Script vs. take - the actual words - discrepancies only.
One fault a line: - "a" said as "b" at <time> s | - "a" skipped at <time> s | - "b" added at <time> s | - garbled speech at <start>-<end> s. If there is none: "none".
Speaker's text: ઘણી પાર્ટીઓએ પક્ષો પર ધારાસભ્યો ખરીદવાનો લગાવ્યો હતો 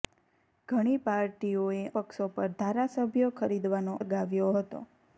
none